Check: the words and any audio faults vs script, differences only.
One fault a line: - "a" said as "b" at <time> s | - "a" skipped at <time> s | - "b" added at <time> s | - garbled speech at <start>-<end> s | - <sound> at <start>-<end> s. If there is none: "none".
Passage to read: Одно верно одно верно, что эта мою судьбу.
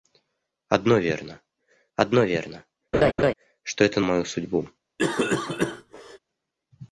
- laugh at 2.9-3.3 s
- cough at 5.0-6.2 s